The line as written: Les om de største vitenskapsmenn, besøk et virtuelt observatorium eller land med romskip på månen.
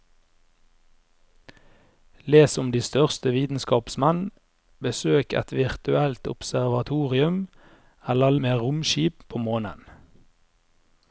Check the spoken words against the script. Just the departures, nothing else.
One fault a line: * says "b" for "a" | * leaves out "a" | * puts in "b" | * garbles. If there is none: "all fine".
* leaves out "land"